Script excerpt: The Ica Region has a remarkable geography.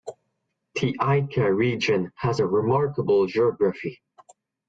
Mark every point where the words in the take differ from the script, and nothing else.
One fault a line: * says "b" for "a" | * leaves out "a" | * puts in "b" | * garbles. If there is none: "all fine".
all fine